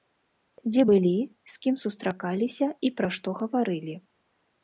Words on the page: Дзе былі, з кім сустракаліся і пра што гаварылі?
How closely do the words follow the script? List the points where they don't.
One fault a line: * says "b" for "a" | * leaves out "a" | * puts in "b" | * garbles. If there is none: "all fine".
all fine